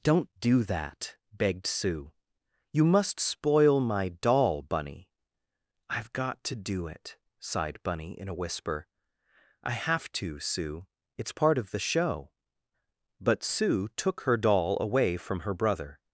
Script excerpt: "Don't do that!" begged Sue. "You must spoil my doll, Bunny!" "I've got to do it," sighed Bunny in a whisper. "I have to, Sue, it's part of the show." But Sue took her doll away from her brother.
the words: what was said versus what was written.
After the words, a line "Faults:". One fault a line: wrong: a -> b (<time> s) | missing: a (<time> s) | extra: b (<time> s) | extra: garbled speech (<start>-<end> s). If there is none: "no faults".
"Don't do that!" begged Sue. "You must spoil my doll, Bunny!" "I've got to do it," sighed Bunny in a whisper. "I have to, Sue, it's part of the show." But Sue took her doll away from her brother.
Faults:
no faults